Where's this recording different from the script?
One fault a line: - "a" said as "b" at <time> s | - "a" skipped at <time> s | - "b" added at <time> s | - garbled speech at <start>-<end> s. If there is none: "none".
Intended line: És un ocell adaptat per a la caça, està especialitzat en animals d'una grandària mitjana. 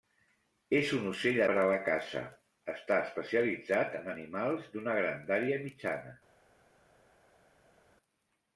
- "adaptat" skipped at 1.4 s